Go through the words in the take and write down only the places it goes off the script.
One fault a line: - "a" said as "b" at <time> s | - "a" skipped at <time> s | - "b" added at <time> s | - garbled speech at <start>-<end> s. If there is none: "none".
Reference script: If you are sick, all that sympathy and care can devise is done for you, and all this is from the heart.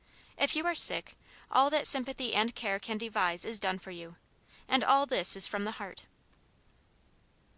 none